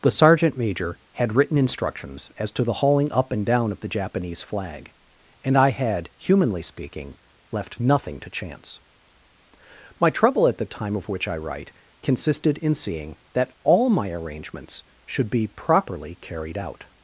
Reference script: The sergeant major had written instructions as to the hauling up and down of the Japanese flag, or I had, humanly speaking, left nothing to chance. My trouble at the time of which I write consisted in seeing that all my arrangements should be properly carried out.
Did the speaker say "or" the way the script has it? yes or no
no